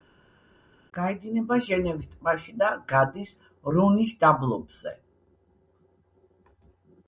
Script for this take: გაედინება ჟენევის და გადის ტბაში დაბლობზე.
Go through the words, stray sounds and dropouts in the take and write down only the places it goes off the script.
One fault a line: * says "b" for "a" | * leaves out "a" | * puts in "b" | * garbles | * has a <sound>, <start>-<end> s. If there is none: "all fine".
* puts in "ტბაში"
* says "რონის" for "ტბაში"